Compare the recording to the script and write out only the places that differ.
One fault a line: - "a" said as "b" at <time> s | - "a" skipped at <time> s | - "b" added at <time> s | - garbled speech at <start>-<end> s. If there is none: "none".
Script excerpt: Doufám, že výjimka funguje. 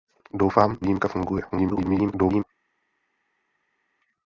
- "že" skipped at 0.8 s
- garbled speech at 1.5-2.4 s